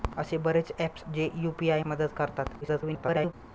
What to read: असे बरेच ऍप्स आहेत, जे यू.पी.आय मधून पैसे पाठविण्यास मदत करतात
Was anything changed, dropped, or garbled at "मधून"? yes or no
yes